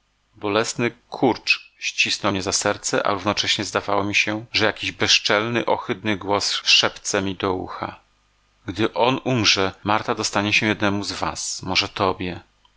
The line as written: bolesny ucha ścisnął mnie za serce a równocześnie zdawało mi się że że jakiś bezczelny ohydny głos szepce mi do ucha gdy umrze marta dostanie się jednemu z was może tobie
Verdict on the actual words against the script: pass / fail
fail